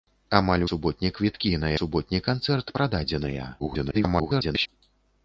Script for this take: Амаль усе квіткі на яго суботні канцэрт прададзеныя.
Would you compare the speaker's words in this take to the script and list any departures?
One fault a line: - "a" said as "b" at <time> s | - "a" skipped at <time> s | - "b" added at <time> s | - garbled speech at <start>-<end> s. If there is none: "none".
- "усе" said as "суботні" at 0.7 s
- "яго" skipped at 1.7 s
- garbled speech at 3.6-4.7 s